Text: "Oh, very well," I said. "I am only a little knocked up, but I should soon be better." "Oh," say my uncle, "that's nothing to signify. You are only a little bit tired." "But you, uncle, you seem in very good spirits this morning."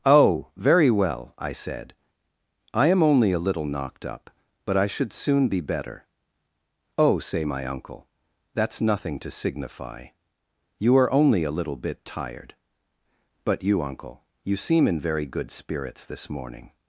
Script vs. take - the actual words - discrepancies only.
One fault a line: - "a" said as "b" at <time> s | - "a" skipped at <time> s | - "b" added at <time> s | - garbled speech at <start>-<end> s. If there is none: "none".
none